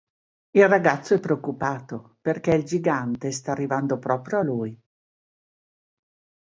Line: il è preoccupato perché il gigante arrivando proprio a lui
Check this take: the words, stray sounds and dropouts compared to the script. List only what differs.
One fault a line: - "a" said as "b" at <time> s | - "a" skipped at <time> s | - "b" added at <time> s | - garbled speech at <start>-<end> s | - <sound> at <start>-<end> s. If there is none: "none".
- "ragazzo" added at 0.7 s
- "sta" added at 3.3 s